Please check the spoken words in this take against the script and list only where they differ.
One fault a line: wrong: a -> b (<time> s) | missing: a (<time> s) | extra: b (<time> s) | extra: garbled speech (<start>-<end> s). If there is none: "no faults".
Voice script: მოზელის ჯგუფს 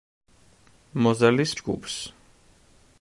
no faults